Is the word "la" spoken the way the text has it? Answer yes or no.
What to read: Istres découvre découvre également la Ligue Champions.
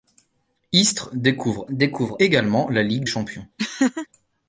yes